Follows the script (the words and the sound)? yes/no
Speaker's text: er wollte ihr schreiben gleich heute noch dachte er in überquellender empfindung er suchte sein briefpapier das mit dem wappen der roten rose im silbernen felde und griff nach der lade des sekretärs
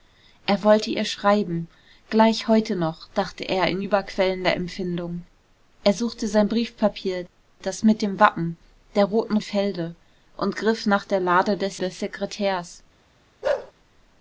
no